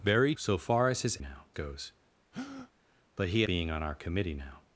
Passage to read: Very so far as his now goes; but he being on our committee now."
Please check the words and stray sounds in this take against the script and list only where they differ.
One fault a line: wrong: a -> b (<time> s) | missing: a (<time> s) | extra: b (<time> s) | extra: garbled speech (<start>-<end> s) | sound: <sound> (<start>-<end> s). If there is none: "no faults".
sound: breath (2.3-2.7 s)